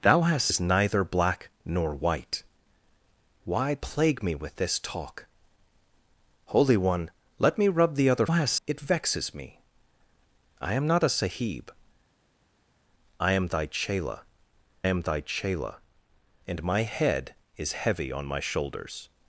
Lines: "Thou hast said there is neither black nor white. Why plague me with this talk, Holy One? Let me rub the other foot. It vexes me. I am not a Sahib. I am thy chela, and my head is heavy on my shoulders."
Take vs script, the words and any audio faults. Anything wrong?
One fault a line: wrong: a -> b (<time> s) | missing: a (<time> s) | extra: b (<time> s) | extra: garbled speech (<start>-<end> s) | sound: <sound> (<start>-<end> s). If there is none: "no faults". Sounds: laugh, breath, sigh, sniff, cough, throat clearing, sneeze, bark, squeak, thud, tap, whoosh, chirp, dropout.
missing: said there (0.5 s)
wrong: foot -> hast (8.3 s)
extra: am thy chela (14.9 s)